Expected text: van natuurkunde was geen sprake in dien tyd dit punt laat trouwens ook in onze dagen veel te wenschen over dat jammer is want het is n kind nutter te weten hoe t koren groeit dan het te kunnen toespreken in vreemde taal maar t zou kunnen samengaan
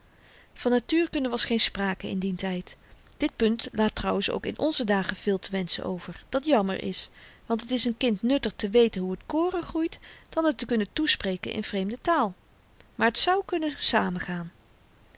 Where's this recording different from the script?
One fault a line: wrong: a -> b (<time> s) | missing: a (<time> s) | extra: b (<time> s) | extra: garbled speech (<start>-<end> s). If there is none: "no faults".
no faults